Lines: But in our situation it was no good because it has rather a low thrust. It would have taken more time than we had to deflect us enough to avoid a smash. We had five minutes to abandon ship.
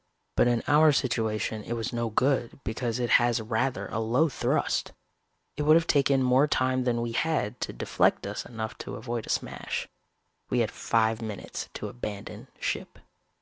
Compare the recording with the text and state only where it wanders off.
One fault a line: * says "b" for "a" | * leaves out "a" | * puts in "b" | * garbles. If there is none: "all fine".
all fine